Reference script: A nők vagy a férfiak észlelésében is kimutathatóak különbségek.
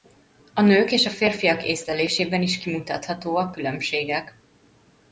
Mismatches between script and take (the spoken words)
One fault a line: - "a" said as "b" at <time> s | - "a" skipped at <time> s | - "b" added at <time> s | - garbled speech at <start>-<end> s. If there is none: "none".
- "vagy" said as "és" at 0.9 s